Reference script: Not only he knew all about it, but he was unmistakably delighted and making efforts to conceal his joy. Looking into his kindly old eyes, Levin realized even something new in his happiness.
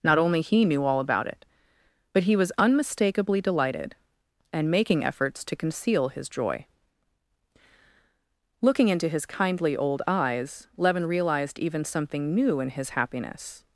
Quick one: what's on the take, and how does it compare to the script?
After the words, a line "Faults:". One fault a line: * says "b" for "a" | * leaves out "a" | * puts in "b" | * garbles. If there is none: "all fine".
Not only he knew all about it, but he was unmistakably delighted and making efforts to conceal his joy. Looking into his kindly old eyes, Levin realized even something new in his happiness.
Faults:
all fine